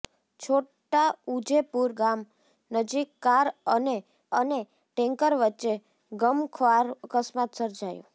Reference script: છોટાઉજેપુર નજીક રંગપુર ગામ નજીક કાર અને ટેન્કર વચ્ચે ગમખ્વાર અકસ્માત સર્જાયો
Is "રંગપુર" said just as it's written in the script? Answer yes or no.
no